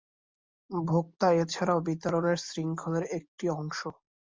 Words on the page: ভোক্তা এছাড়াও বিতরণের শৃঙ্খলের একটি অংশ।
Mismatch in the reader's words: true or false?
false